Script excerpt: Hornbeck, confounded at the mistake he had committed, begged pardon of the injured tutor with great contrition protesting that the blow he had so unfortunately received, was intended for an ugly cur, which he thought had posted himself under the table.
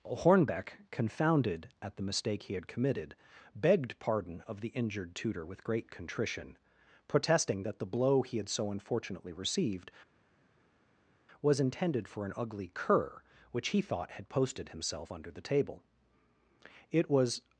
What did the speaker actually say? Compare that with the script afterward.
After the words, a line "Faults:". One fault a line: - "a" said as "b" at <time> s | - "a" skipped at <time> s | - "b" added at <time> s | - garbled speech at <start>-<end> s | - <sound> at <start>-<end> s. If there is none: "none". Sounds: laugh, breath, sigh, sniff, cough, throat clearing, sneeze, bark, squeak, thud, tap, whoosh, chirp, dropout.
Hornbeck, confounded at the mistake he had committed, begged pardon of the injured tutor with great contrition protesting that the blow he had so unfortunately received, was intended for an ugly cur, which he thought had posted himself under the table. It was
Faults:
- "It was" added at 16.9 s